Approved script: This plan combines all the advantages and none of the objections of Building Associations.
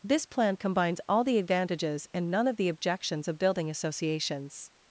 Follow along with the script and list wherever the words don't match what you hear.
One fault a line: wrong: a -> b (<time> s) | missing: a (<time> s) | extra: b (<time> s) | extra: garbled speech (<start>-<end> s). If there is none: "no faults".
no faults